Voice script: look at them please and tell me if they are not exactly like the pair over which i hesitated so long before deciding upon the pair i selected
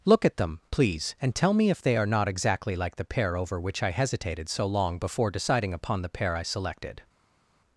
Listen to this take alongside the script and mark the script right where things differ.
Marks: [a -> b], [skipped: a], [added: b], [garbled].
look at them please and tell me if they are not exactly like the pair over which i hesitated so long before deciding upon the pair i selected